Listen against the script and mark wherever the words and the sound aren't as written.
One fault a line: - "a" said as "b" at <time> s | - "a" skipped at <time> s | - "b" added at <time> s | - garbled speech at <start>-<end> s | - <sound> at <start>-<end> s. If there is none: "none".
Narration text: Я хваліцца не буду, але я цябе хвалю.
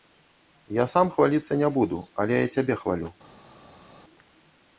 - "сам" added at 0.9 s